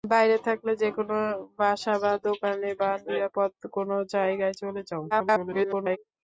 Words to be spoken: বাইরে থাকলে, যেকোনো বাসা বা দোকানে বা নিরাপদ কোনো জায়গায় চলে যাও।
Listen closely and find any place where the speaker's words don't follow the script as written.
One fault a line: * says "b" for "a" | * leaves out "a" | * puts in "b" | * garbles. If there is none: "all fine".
* garbles